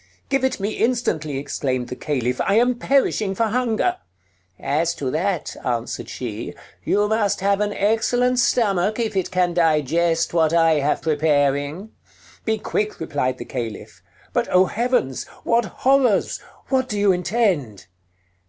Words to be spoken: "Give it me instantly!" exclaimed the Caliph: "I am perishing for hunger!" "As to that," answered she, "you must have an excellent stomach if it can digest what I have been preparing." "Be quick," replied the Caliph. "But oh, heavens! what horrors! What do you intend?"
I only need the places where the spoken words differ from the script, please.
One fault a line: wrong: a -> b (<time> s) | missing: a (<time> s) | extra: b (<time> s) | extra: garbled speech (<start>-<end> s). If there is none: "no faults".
missing: been (11.0 s)